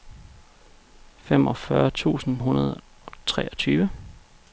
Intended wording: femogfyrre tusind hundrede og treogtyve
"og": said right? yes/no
yes